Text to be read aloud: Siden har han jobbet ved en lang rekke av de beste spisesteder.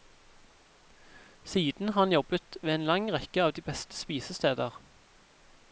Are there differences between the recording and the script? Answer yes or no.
no